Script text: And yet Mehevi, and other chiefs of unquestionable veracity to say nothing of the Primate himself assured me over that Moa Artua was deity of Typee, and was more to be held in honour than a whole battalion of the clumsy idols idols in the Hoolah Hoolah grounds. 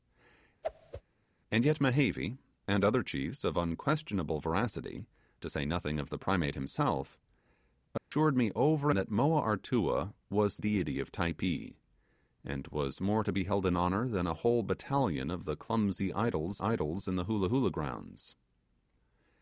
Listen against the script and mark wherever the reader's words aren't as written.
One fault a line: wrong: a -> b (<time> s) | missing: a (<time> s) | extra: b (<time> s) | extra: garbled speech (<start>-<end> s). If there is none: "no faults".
no faults